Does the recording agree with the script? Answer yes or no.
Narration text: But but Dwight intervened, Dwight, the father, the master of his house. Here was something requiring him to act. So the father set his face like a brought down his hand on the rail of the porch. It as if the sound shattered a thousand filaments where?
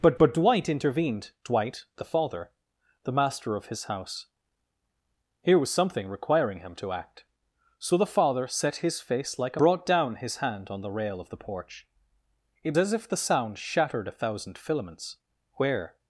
yes